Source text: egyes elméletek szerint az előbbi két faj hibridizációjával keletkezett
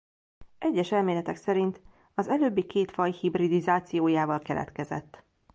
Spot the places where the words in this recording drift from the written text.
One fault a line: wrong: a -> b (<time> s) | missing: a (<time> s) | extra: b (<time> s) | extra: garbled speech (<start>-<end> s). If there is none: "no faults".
no faults